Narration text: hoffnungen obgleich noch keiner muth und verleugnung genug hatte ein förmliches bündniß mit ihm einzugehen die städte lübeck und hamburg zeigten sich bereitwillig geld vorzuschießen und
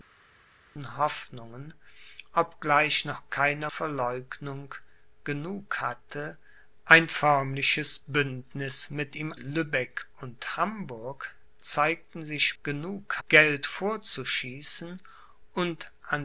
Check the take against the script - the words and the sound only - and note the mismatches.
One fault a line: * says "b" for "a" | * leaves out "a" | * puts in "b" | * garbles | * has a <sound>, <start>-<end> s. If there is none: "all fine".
* leaves out "muth und"
* leaves out "einzugehen die städte"
* says "genug" for "bereitwillig"